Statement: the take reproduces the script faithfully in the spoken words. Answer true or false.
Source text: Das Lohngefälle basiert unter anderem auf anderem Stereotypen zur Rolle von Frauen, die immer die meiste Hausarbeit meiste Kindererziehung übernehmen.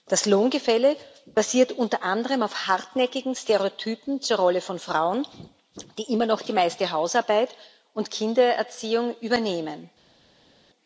false